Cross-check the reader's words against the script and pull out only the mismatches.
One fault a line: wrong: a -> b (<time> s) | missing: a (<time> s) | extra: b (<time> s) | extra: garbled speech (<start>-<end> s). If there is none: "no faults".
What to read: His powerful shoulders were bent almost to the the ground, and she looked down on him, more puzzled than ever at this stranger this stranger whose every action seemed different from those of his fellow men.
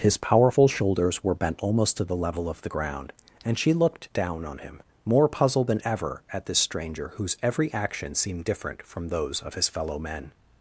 extra: level of (2.1 s)
missing: this stranger (7.1 s)